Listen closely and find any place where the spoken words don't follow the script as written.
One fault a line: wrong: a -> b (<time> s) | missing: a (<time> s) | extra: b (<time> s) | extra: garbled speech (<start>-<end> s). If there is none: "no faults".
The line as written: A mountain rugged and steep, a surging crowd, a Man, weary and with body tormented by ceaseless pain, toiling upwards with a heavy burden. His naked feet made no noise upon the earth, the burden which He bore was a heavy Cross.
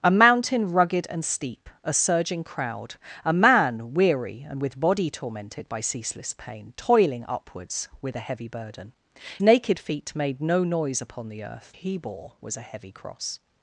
missing: His (8.9 s)
missing: the burden which (11.7 s)